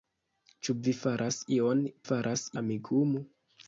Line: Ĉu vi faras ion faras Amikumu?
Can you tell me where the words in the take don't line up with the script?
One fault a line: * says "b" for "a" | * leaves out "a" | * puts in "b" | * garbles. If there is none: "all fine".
all fine